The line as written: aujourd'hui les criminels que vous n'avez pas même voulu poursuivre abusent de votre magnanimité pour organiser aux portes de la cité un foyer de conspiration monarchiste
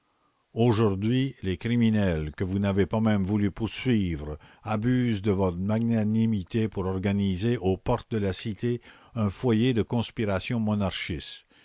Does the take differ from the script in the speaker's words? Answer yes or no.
no